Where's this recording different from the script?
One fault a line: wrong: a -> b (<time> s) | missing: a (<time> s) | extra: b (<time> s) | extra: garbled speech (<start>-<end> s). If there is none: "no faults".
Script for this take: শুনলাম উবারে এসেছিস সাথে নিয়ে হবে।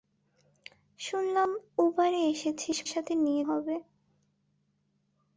no faults